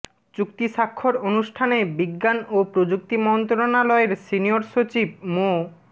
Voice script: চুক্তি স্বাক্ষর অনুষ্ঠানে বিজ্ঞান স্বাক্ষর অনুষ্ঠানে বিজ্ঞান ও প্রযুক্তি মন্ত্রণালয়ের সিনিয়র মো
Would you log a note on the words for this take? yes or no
yes